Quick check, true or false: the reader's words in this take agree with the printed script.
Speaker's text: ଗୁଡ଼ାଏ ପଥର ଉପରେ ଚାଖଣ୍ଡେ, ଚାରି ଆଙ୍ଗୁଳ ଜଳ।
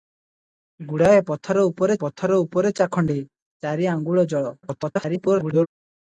false